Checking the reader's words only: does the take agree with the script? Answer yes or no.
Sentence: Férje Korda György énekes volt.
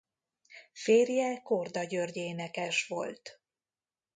yes